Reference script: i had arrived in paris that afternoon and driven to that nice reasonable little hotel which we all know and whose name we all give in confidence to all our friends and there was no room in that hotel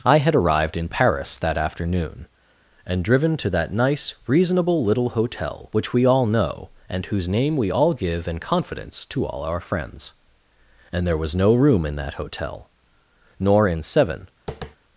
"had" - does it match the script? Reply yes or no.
yes